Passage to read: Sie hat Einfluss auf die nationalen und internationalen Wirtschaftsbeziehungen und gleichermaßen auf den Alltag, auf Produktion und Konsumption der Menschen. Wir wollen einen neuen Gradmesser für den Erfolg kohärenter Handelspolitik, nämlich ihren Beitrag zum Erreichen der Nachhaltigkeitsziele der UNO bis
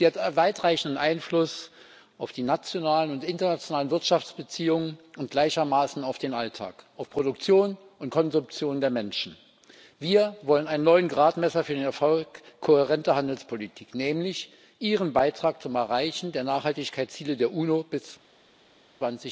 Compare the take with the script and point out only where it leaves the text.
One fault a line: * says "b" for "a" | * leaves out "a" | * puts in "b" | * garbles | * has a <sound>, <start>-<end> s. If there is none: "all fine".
* puts in "weitreichenden"